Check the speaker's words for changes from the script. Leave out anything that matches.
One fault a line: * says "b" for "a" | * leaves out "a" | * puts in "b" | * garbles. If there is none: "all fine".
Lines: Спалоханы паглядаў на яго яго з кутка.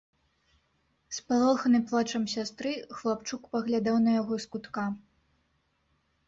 * puts in "плачам сястры хлапчук"
* leaves out "яго"